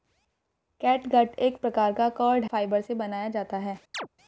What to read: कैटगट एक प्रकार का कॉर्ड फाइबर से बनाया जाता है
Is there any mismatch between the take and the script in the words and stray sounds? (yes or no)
yes